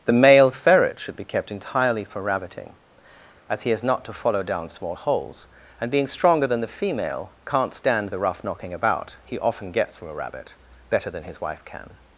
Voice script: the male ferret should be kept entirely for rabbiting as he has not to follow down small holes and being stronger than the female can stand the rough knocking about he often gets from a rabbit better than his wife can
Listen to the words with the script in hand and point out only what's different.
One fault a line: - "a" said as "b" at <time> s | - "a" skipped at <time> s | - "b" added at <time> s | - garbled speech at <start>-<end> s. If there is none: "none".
- "can" said as "can't" at 7.4 s